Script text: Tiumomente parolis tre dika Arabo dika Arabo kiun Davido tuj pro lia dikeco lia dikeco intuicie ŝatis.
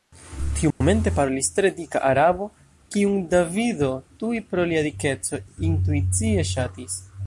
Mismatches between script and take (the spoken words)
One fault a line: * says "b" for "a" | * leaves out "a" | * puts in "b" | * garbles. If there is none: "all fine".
* leaves out "dika Arabo"
* leaves out "lia dikeco"